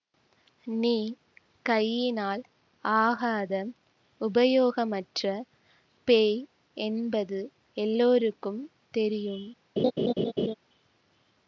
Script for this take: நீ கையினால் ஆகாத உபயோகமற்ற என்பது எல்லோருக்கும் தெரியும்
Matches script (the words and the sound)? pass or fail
fail